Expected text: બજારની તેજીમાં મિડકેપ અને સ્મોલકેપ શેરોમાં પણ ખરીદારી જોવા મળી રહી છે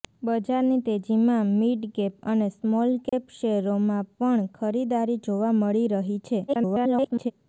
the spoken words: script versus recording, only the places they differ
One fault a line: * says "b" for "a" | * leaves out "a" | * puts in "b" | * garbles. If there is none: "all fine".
* garbles